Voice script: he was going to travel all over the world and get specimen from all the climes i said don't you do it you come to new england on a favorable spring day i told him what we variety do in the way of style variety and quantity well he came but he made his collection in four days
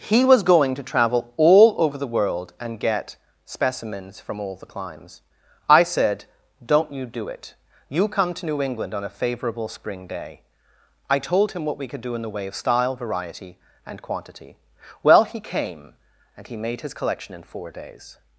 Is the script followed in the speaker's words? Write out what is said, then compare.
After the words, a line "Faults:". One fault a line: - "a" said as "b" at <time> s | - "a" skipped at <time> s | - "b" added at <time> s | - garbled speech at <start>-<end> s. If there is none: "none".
he was going to travel all over the world and get specimens from all the climes i said don't you do it you come to new england on a favorable spring day i told him what we could do in the way of style variety and quantity well he came and he made his collection in four days
Faults:
- "specimen" said as "specimens" at 3.5 s
- "variety" said as "could" at 11.9 s
- "but" said as "and" at 16.4 s